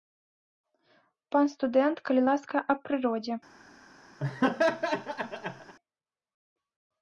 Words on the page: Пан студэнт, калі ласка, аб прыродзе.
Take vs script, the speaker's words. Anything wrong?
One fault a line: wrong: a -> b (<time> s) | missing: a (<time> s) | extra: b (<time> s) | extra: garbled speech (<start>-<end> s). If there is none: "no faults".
no faults